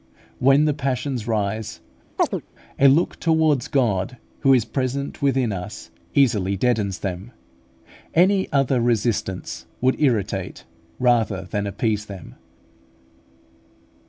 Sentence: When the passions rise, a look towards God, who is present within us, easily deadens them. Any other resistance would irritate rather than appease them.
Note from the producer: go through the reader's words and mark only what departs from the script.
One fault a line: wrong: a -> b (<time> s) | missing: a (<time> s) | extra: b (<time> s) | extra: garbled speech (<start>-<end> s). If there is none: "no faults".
no faults